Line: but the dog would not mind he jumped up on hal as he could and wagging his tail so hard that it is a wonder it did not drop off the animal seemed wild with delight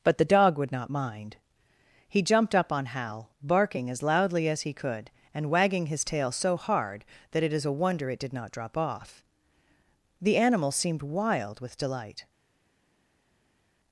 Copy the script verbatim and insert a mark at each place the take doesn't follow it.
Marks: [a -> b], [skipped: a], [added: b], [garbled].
but the dog would not mind he jumped up on hal [added: barking as loudly] as he could and wagging his tail so hard that it is a wonder it did not drop off the animal seemed wild with delight